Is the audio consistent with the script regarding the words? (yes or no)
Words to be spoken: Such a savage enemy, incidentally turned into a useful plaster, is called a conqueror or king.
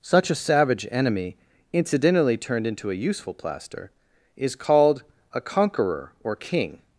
yes